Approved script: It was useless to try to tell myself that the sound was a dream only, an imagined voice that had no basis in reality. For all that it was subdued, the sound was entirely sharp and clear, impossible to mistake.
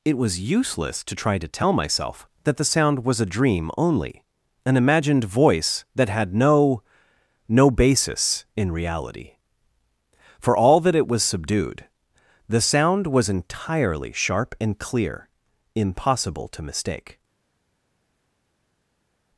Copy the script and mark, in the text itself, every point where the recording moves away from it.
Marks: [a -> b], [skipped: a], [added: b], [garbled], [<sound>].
It was useless to try to tell myself that the sound was a dream only, an imagined voice that had no [added: no] basis in reality. For all that it was subdued, the sound was entirely sharp and clear, impossible to mistake.